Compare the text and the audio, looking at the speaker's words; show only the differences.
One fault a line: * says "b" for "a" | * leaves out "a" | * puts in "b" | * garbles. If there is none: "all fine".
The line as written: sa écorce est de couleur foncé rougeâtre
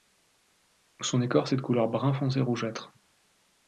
* says "son" for "sa"
* puts in "brun"